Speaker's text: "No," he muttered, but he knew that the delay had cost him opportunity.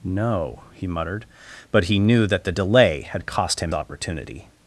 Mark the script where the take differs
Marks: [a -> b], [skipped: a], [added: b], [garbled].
"No," he muttered, but he knew that the delay had cost him opportunity.